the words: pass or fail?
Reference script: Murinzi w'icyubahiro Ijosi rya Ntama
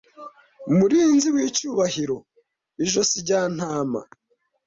pass